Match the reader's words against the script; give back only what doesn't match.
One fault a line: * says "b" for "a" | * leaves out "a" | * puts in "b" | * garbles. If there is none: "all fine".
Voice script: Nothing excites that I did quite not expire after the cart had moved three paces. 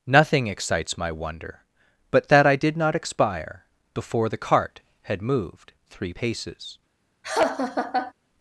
* puts in "my wonder but"
* leaves out "quite"
* says "before" for "after"